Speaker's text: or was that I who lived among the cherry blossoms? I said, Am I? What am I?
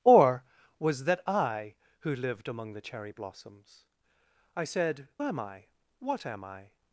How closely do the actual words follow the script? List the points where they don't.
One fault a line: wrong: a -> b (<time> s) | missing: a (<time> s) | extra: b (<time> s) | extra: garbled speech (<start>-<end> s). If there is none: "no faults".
no faults